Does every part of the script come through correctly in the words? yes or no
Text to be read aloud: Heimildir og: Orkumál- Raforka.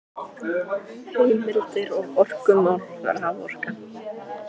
yes